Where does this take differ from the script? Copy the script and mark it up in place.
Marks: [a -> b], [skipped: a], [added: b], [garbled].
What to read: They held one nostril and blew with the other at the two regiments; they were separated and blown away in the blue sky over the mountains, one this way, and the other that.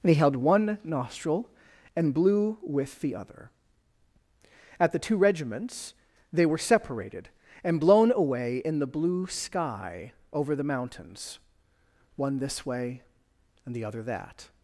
They held one nostril and blew with the other at the two regiments; they were separated and blown away in the blue sky over the mountains, one this way, and the other that.